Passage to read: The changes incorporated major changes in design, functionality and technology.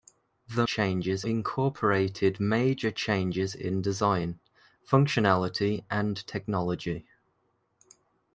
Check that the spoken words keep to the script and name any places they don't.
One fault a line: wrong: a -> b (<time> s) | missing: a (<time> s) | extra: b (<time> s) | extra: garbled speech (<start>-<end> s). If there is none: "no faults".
no faults